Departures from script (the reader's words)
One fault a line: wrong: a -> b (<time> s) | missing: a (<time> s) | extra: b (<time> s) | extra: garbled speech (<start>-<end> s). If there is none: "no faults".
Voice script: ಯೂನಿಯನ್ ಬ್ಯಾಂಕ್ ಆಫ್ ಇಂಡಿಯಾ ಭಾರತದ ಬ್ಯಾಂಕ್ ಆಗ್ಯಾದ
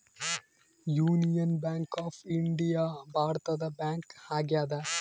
no faults